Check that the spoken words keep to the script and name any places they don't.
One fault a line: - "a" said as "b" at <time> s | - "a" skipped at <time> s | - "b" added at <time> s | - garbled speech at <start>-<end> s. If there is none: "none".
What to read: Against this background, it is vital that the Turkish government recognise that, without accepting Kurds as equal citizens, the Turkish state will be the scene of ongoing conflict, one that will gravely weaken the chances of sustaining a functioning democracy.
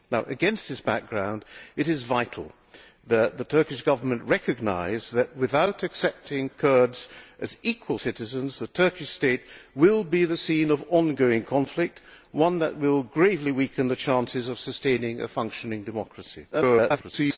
- garbled speech at 16.5-17.4 s